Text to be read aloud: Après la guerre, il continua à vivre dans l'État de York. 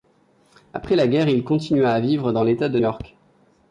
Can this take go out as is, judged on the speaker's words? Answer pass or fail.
pass